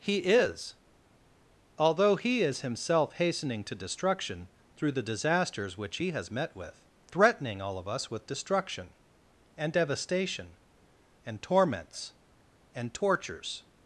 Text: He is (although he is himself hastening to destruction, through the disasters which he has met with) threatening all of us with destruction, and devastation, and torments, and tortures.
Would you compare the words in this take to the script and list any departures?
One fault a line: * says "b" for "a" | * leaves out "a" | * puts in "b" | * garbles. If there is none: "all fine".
all fine